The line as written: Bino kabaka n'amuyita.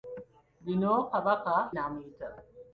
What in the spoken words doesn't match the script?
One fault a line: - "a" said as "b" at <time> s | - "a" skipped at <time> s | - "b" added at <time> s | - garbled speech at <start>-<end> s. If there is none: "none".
none